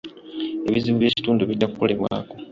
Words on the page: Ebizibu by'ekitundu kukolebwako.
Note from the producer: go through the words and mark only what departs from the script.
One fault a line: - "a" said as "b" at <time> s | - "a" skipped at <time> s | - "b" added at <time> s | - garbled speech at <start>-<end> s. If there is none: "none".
- "bijja" added at 1.5 s